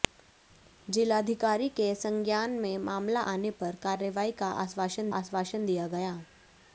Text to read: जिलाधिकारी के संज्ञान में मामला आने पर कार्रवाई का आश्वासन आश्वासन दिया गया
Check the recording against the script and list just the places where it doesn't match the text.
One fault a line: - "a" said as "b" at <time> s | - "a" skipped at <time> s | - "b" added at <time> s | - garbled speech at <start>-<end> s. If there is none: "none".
none